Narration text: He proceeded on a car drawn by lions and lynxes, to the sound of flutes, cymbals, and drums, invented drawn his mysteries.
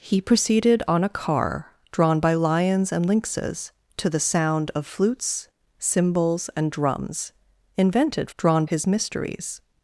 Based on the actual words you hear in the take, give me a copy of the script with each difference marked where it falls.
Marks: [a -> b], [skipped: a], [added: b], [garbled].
He proceeded on a car drawn by lions and lynxes, to the sound of flutes, cymbals, and drums, invented drawn his mysteries.